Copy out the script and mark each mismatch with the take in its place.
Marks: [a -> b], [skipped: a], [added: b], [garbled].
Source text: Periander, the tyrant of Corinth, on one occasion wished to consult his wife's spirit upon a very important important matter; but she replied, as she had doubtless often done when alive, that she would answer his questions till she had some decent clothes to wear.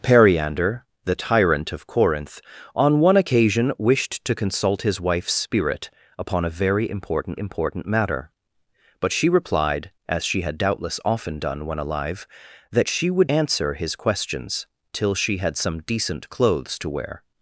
Periander, the tyrant of Corinth, on one occasion wished to consult his wife's spirit upon a very important important matter; but she replied, as she had doubtless often done when alive, that she would answer his questions till she had some decent clothes to wear.